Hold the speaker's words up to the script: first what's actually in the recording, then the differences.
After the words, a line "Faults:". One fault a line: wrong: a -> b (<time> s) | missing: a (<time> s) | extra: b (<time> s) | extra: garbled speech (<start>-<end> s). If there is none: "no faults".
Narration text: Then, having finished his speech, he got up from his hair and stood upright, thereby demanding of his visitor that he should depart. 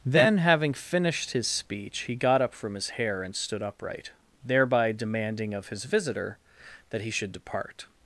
Then, having finished his speech, he got up from his hair and stood upright, thereby demanding of his visitor that he should depart.
Faults:
no faults